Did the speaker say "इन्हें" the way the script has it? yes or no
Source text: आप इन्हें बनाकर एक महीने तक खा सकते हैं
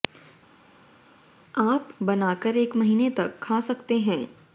no